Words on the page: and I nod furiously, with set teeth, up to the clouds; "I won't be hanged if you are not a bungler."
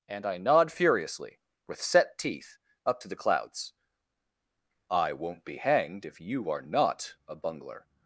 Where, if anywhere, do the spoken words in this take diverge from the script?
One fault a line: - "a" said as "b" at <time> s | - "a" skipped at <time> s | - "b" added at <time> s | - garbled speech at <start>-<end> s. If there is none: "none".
none